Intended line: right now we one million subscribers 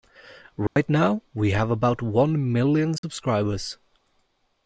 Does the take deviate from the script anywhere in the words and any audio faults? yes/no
yes